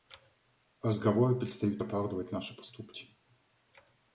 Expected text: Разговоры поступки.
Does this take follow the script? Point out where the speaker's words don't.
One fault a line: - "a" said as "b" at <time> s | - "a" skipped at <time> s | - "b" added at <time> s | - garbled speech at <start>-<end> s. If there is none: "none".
- "перестают оправдывать наши" added at 1.4 s